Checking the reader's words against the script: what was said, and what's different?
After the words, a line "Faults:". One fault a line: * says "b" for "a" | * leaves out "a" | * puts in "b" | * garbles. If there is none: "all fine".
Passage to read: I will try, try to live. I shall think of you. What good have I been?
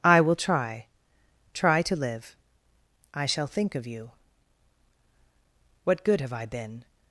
I will try, try to live. I shall think of you. What good have I been?
Faults:
all fine